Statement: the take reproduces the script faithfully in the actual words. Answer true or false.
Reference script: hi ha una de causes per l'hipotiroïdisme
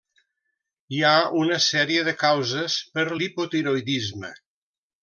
false